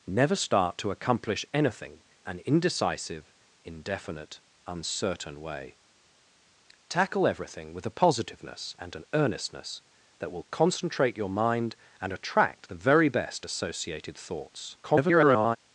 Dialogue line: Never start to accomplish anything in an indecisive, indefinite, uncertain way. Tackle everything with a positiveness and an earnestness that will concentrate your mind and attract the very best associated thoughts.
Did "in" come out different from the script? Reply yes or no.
yes